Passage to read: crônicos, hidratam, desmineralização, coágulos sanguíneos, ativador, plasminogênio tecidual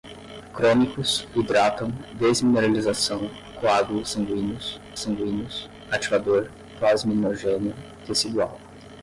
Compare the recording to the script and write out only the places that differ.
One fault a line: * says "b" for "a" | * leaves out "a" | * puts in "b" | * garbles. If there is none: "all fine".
* puts in "sanguíneos"